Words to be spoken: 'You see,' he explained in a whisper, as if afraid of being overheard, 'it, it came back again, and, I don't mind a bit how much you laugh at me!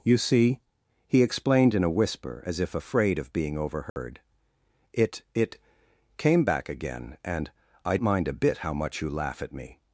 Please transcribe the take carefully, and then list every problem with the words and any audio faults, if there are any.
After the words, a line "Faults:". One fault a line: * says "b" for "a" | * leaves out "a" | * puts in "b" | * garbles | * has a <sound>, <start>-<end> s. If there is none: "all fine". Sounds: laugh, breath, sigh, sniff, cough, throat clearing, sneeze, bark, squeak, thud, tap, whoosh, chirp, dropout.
'You see,' he explained in a whisper, as if afraid of being overheard, 'it, it came back again, and, I mind a bit how much you laugh at me!
Faults:
* has a dropout, 3.9-4.0 s
* leaves out "don't"